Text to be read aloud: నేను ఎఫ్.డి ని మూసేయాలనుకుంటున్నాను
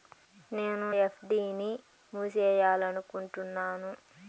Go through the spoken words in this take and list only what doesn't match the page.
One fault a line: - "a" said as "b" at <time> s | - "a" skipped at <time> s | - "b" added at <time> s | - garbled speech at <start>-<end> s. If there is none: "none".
none